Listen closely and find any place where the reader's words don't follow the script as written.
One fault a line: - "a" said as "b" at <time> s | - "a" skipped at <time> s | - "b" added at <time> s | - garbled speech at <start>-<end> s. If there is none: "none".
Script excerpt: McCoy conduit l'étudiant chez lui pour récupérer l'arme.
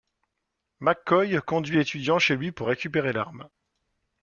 none